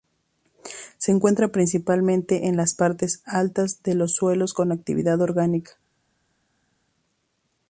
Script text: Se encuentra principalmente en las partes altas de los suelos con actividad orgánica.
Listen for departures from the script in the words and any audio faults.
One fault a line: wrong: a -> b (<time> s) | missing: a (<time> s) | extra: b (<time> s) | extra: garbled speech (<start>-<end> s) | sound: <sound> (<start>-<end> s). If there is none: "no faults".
no faults